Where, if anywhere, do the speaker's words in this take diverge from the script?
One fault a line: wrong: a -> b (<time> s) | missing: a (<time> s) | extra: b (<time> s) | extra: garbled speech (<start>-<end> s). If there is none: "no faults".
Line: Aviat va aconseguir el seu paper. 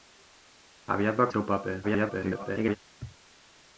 missing: aconseguir (1.3 s)
extra: garbled speech (1.8-2.8 s)